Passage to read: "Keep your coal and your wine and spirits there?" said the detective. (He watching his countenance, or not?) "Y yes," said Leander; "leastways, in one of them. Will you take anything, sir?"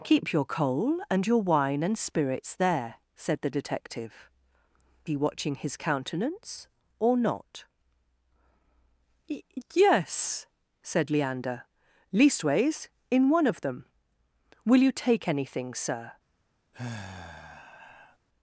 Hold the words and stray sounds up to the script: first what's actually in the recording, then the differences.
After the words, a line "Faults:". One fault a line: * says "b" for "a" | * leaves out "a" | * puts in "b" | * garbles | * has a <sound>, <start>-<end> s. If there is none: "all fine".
"Keep your coal and your wine and spirits there?" said the detective. (He watching his countenance, or not?) "Y yes," said Leander; "leastways, in one of them. Will you take anything, sir?"
Faults:
* has a sigh, 16.7-18.2 s